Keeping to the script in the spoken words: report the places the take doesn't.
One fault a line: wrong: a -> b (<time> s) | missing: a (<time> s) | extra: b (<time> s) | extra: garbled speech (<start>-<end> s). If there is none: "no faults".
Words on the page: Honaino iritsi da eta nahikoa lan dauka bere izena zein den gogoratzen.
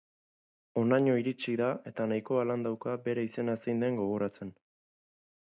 no faults